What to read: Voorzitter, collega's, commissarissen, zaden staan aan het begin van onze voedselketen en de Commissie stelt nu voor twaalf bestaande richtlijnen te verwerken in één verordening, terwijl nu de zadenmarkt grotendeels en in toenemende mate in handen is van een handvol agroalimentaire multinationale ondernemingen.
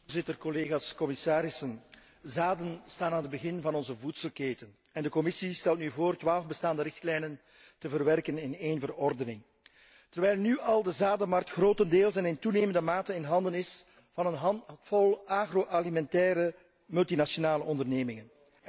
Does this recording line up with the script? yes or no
no